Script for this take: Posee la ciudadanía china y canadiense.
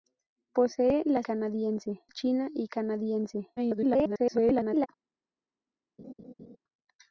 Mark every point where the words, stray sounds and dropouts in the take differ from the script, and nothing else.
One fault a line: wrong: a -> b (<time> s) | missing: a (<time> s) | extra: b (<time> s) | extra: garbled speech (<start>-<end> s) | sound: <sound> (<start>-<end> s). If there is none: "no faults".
wrong: ciudadanía -> canadiense (1.2 s)
extra: garbled speech (3.6-4.9 s)
sound: laugh (6.0-6.6 s)